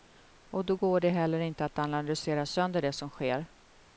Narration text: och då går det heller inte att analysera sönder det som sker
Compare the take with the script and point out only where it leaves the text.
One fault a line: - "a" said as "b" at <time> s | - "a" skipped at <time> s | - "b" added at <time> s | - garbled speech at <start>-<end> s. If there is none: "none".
none